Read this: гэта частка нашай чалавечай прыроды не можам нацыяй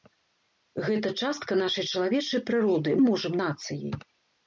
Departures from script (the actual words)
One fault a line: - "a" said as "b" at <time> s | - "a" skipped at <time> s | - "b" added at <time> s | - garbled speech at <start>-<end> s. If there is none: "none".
none